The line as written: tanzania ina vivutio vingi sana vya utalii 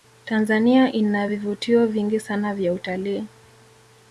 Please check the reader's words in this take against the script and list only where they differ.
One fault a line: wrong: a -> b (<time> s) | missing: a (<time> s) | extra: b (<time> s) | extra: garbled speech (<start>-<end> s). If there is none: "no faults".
no faults